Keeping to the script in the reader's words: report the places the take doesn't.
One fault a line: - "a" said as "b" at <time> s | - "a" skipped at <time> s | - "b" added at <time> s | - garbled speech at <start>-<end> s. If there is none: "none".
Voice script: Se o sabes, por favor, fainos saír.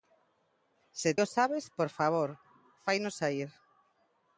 none